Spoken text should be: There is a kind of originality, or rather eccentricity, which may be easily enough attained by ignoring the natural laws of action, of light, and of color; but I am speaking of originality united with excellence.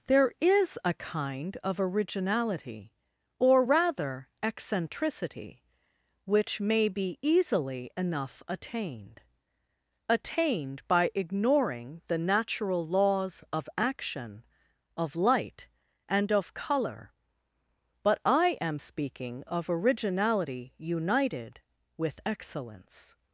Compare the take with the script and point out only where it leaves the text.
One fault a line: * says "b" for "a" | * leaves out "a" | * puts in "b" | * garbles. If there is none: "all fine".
* puts in "attained"